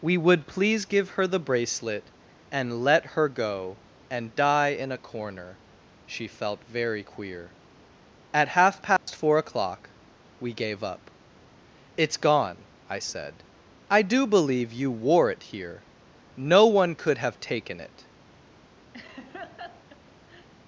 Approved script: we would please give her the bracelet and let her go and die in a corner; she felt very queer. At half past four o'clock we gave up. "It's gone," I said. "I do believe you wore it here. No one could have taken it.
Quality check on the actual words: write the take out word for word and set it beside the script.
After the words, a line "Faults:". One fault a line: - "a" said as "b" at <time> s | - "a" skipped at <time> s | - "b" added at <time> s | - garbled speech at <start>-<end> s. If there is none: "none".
we would please give her the bracelet and let her go and die in a corner; she felt very queer. At half past four o'clock we gave up. "It's gone," I said. "I do believe you wore it here. No one could have taken it.
Faults:
none